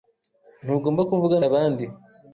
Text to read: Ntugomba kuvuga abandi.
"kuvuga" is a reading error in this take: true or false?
false